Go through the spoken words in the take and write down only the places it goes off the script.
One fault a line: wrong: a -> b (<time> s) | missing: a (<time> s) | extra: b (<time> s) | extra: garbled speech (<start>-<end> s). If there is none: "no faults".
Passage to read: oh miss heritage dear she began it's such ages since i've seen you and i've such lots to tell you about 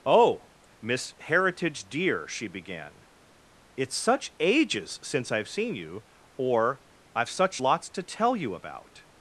wrong: and -> or (6.4 s)